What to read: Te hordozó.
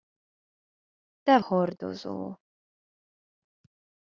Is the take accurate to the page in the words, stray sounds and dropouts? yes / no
yes